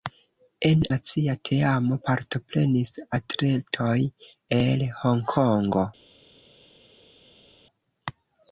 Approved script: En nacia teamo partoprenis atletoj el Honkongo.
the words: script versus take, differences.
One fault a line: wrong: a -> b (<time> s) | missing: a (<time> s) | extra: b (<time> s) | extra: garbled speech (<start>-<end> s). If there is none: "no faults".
no faults